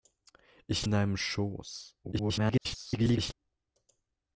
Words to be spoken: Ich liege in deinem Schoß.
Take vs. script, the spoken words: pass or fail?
fail